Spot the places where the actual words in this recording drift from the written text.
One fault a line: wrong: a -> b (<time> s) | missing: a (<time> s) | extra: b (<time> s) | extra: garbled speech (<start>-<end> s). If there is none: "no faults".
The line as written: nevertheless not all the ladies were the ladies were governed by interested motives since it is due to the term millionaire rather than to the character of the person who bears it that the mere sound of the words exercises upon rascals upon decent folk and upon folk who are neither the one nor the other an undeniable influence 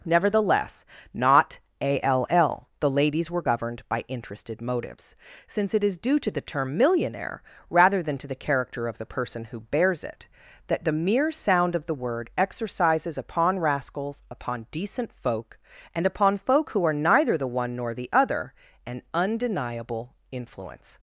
missing: the ladies were (3.4 s)
wrong: words -> word (11.9 s)